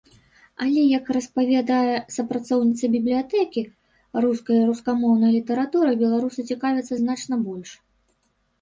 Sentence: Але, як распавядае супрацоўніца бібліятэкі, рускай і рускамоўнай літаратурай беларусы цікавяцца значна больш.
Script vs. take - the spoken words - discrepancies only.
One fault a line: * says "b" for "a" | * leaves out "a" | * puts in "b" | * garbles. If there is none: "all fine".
all fine